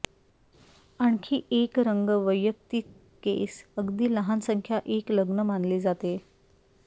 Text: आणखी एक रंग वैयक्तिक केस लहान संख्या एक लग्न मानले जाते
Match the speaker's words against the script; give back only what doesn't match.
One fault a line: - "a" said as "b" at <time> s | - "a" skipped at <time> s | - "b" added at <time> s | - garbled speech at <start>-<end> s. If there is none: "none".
- "अगदी" added at 3.8 s